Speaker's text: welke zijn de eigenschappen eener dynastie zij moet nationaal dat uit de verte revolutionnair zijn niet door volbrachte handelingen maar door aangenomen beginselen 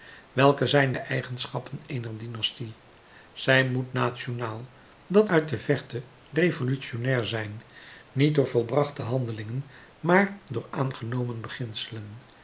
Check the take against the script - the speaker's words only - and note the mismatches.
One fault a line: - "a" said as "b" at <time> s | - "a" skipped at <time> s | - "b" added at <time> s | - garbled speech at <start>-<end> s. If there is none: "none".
none